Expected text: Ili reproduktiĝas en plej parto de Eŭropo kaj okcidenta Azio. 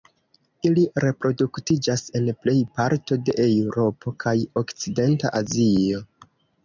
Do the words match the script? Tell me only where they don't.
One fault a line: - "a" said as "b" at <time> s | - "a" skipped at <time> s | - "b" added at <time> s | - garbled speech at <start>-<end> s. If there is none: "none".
none